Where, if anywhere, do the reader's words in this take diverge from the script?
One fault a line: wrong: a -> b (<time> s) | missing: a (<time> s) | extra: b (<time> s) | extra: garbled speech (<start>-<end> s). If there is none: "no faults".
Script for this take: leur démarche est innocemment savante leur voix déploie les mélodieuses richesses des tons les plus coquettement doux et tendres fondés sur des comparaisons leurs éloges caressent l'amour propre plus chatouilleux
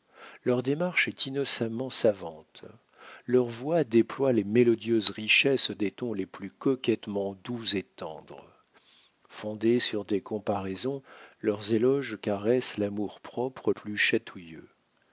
no faults